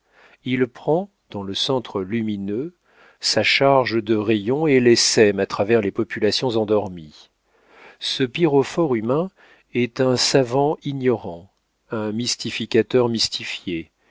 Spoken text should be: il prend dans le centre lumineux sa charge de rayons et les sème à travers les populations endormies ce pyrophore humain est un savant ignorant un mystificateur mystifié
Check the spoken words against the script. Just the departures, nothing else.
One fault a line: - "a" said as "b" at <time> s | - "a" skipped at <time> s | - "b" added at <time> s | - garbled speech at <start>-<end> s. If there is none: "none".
none